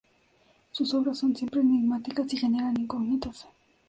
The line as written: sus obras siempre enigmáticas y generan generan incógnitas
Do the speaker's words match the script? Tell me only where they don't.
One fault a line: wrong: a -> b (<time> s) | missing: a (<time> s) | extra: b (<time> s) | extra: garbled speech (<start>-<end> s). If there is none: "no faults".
extra: son (1.2 s)
missing: generan (2.7 s)